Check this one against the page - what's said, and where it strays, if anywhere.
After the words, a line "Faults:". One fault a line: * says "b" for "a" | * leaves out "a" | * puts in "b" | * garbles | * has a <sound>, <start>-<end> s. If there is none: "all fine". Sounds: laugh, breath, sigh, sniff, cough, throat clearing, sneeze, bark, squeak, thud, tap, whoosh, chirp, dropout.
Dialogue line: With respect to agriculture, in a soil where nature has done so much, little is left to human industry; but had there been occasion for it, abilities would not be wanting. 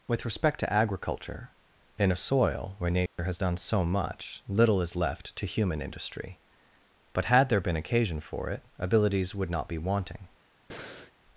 With respect to agriculture, in a soil where nature has done so much, little is left to human industry; but had there been occasion for it, abilities would not be wanting.
Faults:
* has a dropout, 3.1-3.2 s
* has a breath, 10.7-11.1 s